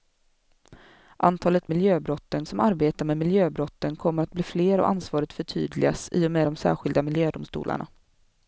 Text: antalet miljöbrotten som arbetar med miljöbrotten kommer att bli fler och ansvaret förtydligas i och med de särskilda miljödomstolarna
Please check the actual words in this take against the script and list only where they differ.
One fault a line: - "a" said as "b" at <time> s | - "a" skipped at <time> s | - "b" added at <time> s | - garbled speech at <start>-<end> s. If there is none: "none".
none